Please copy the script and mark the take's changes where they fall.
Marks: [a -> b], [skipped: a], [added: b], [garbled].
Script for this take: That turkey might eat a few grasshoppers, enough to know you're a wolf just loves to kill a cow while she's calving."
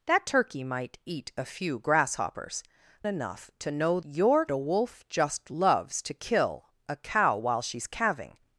That turkey might eat a few grasshoppers, enough to know you're a wolf just loves to kill a cow while she's calving."